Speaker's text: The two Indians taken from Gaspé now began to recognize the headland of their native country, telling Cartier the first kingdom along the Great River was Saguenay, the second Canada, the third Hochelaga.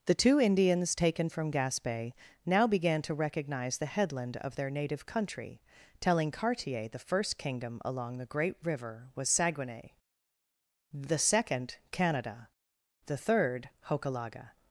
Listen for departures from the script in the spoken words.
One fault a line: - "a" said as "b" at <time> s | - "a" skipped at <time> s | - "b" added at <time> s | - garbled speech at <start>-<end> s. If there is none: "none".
none